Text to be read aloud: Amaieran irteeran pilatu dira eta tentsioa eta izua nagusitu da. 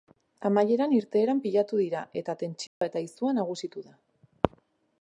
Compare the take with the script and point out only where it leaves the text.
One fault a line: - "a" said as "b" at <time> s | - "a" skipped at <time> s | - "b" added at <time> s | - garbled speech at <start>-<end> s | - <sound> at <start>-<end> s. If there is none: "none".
- dropout at 2.7-2.8 s